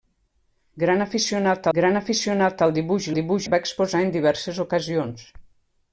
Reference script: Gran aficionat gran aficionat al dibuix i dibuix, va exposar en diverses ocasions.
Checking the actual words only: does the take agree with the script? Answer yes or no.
yes